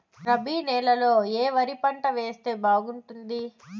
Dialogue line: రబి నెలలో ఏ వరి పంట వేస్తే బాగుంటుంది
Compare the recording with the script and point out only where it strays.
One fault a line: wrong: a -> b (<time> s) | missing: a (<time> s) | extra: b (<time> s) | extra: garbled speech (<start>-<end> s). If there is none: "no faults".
no faults